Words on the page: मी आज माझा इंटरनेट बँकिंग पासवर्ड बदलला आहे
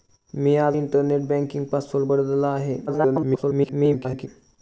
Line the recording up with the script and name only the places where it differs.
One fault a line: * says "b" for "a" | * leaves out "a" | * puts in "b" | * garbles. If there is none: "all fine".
* leaves out "माझा"
* garbles